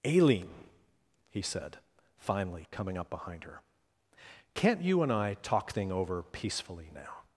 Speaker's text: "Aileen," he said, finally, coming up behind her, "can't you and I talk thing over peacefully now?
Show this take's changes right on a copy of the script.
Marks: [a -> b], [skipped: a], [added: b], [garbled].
"Aileen," he said, finally, coming up behind her, "can't you and I talk thing over peacefully now?